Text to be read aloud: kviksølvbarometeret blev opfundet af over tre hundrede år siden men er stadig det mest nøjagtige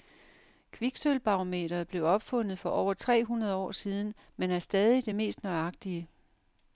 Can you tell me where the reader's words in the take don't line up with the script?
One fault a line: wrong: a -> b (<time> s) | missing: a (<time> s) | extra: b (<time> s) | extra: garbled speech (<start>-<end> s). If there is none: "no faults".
wrong: af -> for (2.6 s)